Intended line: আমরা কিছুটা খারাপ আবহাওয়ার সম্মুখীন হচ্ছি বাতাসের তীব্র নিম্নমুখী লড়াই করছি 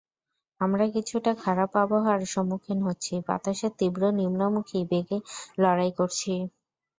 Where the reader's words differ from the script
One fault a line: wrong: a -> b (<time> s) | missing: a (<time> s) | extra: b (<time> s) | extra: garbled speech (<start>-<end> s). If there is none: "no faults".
extra: বেগে (4.9 s)